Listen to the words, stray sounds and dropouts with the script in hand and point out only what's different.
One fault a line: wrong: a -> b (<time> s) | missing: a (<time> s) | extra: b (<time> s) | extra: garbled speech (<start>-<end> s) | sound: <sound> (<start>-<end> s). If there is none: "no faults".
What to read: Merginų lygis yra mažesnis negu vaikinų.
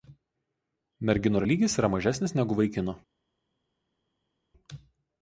no faults